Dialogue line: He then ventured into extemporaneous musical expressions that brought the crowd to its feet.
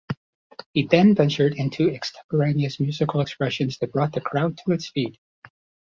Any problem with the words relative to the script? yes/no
no